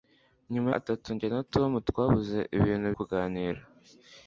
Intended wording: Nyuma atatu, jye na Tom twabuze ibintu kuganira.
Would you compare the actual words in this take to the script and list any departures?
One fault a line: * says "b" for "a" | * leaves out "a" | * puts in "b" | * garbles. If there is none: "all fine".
all fine